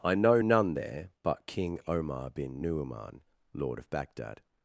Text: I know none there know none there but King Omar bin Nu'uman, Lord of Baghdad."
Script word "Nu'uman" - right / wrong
right